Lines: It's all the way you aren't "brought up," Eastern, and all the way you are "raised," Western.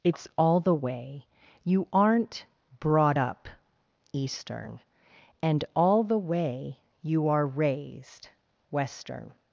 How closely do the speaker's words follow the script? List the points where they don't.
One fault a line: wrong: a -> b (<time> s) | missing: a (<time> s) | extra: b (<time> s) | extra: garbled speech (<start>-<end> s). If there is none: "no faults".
no faults